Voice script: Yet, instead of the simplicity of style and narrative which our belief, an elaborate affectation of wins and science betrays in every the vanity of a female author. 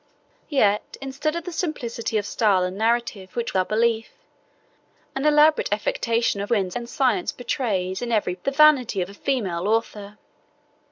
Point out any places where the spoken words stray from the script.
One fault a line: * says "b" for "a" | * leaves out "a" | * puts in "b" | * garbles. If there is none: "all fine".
all fine